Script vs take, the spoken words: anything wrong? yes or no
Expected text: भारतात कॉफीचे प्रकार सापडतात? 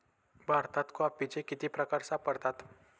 yes